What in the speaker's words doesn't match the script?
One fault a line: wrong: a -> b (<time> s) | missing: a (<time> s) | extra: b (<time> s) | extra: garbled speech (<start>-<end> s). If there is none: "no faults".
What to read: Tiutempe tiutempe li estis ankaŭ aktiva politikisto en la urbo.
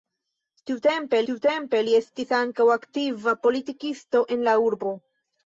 no faults